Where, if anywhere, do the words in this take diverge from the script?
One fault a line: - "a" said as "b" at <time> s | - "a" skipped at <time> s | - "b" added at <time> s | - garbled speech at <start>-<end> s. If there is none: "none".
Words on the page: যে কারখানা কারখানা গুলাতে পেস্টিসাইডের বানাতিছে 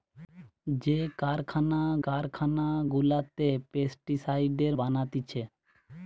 none